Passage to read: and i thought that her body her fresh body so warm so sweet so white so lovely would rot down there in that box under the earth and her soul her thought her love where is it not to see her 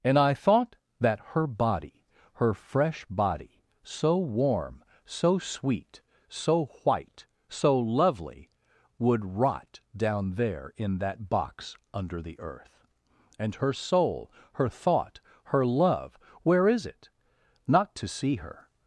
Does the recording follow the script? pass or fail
pass